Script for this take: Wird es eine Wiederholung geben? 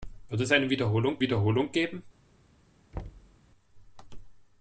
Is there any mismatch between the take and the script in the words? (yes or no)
yes